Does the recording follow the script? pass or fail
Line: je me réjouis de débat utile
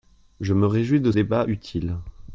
pass